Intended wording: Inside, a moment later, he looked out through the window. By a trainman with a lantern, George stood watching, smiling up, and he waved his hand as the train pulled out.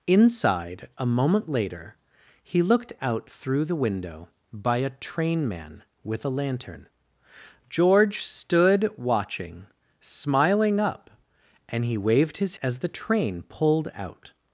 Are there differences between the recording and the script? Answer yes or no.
yes